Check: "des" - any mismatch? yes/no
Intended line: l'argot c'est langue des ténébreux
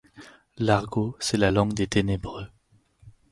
no